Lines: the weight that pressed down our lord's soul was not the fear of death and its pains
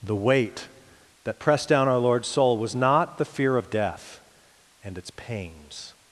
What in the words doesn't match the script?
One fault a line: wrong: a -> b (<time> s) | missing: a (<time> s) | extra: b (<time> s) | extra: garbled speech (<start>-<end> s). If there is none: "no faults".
no faults